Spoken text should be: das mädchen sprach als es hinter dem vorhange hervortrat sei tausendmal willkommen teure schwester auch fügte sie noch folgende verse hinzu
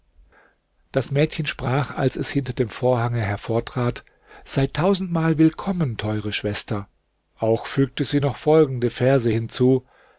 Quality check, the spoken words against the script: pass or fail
pass